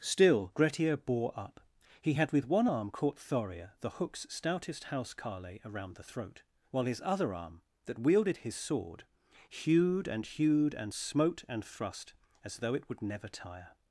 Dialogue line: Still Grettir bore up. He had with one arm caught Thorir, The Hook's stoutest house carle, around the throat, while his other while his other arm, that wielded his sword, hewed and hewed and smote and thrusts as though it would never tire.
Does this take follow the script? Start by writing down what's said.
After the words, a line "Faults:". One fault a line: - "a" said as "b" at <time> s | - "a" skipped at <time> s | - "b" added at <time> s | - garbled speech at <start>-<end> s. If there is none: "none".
Still Grettir bore up. He had with one arm caught Thorir, The Hook's stoutest house carle, around the throat, while his other arm, that wielded his sword, hewed and hewed and smote and thrust as though it would never tire.
Faults:
- "while his other" skipped at 7.3 s
- "thrusts" said as "thrust" at 11.6 s